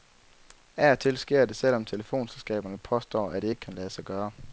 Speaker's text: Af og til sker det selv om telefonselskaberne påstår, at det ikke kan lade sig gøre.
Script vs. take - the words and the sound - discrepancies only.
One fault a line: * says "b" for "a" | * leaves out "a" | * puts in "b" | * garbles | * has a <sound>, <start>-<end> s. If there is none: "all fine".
all fine